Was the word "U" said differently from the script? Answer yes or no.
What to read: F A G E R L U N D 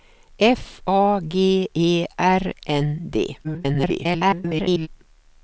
yes